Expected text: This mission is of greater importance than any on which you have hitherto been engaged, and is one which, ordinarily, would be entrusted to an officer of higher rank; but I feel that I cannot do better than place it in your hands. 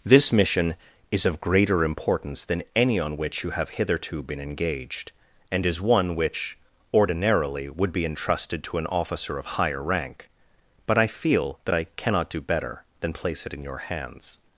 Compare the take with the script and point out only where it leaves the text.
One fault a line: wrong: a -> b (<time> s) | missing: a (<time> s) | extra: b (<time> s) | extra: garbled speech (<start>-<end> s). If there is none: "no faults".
no faults